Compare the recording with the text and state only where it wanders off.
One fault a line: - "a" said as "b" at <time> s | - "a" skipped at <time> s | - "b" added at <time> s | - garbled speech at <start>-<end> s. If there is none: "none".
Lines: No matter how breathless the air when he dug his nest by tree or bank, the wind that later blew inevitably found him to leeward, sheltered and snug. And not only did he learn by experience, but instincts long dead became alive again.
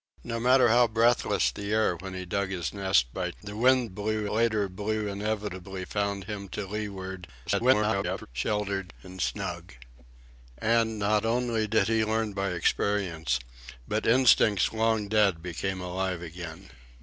- "tree or bank" skipped at 3.3 s
- "that" said as "blew" at 3.9 s
- garbled speech at 7.5-8.3 s